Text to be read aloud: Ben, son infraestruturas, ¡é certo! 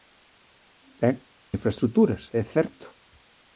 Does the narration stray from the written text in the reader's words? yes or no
yes